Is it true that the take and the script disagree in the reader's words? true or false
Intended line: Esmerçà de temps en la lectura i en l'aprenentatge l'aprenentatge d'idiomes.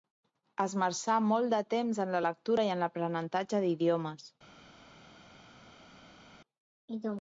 true